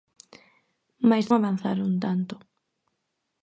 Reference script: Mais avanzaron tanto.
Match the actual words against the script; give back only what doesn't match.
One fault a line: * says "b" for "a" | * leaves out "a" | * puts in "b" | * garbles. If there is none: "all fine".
all fine